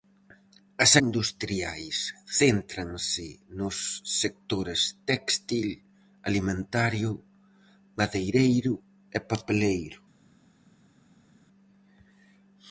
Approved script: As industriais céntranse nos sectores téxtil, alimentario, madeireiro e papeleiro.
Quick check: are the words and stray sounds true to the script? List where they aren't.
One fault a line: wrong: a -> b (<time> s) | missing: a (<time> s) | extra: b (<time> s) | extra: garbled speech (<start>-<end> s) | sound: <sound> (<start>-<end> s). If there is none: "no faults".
no faults